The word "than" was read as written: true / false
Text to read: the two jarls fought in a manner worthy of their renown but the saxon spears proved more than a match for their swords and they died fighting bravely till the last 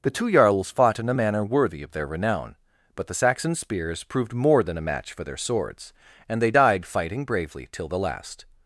true